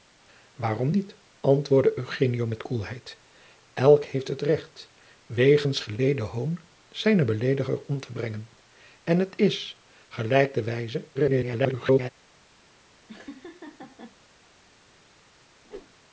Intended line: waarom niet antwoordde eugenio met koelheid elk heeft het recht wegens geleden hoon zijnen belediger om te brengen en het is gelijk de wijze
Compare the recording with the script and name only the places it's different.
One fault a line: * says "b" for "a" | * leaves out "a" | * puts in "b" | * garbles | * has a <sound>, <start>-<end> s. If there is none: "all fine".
* garbles
* has a laugh, 13.1-14.2 s
* has a whoosh, 15.6-15.9 s